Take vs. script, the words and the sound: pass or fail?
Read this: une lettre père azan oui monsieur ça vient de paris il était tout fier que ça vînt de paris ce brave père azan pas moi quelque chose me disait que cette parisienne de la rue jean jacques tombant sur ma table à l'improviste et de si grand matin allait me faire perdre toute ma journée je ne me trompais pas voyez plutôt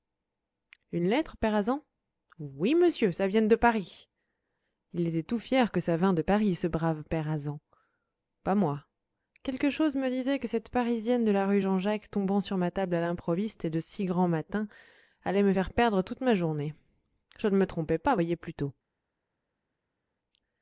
pass